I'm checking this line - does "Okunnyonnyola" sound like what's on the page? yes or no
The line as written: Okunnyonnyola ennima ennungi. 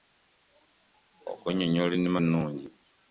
yes